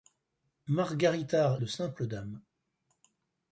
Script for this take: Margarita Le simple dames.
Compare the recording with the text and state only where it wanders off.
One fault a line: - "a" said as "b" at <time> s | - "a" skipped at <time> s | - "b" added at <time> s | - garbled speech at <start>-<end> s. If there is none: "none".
none